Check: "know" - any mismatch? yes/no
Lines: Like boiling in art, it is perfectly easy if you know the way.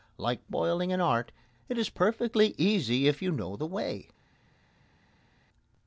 no